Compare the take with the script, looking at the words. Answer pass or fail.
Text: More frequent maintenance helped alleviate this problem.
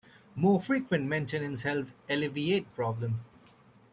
fail